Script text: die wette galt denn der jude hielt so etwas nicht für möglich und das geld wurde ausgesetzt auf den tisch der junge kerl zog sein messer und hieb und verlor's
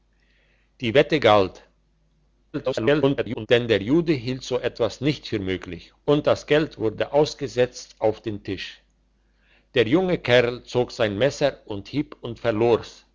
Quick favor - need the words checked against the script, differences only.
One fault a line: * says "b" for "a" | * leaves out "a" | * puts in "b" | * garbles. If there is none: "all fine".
* garbles